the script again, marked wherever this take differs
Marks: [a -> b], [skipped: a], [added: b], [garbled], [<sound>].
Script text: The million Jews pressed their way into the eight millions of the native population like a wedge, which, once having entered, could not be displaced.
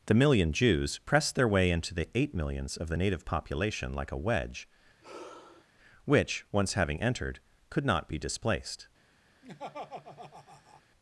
The million Jews pressed their way into the eight millions of the native population like a wedge, [sigh] which, once having entered, could not be displaced. [laugh]